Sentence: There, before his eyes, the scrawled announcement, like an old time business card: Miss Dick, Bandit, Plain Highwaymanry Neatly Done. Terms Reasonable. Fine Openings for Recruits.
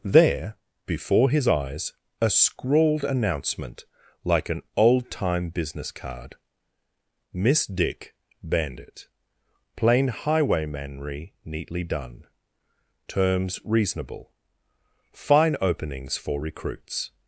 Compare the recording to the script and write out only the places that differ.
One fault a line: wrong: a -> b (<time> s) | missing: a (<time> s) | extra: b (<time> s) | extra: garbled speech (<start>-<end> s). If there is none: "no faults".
wrong: the -> a (2.2 s)